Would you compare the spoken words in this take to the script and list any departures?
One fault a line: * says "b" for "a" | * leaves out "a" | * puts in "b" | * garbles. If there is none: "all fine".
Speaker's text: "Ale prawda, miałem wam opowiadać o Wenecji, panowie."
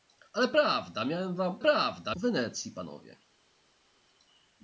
* says "prawda" for "opowiadać"